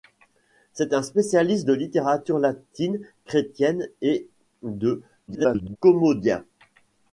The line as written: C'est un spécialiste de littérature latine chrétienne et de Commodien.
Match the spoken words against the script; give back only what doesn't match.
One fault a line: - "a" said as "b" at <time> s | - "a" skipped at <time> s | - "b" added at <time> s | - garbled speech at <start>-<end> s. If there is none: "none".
- garbled speech at 5.3-5.8 s